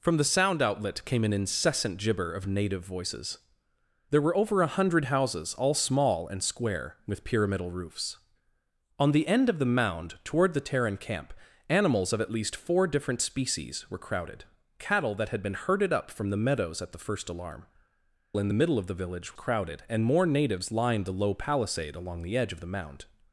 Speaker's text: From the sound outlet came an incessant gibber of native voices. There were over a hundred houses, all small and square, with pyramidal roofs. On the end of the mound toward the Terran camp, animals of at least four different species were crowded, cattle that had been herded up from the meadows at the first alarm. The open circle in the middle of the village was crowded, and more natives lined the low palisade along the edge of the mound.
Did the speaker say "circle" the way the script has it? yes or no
no